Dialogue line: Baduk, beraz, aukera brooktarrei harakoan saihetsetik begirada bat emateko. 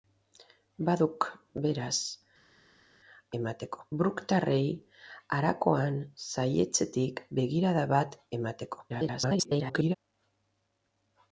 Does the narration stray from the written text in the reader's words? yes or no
yes